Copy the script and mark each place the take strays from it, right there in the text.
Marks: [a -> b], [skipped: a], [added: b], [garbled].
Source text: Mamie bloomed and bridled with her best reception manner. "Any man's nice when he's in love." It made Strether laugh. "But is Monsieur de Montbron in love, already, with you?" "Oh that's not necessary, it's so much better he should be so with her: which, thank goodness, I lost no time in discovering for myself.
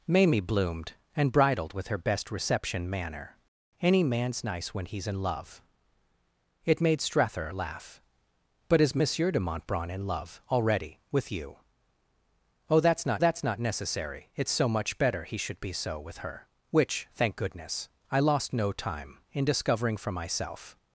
Mamie bloomed and bridled with her best reception manner. "Any man's nice when he's in love." It made Strether laugh. "But is Monsieur de Montbron in love, already, with you?" "Oh that's not [added: that's not] necessary, it's so much better he should be so with her: which, thank goodness, I lost no time in discovering for myself.